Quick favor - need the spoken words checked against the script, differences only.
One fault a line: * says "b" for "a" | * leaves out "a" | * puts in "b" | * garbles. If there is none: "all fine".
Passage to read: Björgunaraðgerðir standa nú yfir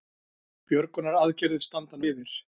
* leaves out "nú"